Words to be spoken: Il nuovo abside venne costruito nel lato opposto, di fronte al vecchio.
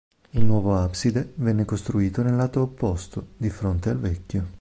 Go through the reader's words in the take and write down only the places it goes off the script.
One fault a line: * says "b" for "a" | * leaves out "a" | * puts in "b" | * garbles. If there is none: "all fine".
all fine